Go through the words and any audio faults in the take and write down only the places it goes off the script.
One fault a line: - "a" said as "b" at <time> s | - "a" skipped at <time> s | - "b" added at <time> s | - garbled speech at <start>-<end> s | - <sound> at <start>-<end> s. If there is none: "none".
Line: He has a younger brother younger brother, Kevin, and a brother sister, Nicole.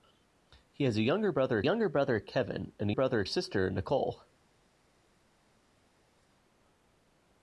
none